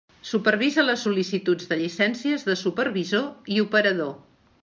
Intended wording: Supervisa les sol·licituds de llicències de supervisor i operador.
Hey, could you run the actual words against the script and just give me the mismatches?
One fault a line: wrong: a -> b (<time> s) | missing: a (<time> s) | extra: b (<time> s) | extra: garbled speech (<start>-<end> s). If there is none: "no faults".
no faults